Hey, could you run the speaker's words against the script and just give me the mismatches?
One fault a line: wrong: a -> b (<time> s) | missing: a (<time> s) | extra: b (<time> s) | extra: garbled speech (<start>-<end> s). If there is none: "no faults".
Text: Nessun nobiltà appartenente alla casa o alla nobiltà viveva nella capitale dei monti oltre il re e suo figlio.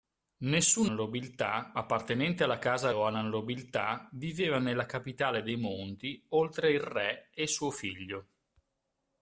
no faults